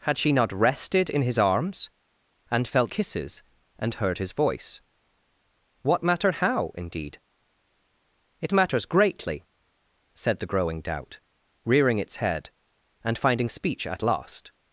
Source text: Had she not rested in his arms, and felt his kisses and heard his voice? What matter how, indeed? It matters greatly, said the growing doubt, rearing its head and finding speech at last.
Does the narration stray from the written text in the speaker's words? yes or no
yes